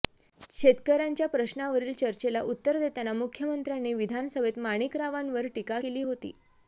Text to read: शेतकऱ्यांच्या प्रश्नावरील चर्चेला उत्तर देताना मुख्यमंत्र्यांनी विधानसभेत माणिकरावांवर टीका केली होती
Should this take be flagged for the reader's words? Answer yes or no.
no